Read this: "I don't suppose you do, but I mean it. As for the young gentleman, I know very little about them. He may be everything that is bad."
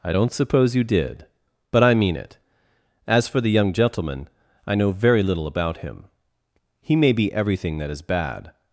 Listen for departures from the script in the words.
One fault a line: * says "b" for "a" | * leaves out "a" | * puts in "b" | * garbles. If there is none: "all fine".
* says "did" for "do"
* says "him" for "them"